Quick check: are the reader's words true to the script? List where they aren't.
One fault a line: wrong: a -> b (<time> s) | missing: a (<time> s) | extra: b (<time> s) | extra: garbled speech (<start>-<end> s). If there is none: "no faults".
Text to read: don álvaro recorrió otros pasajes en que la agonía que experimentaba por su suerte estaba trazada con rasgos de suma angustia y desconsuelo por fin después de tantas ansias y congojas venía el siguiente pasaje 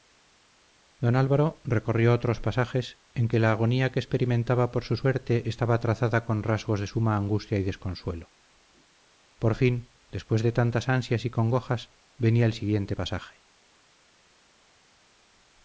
no faults